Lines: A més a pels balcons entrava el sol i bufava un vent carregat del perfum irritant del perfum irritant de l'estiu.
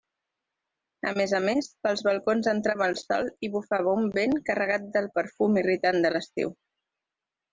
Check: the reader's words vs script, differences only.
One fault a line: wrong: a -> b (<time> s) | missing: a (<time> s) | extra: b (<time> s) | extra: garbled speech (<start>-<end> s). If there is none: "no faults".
extra: més (1.4 s)
missing: del perfum irritant (6.0 s)